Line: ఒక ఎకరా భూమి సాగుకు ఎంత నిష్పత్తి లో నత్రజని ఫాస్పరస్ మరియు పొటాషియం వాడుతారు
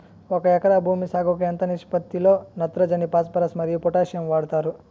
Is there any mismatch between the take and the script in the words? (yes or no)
no